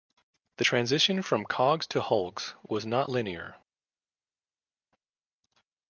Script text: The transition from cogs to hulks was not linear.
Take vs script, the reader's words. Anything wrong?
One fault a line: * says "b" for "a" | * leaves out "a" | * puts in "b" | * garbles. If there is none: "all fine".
all fine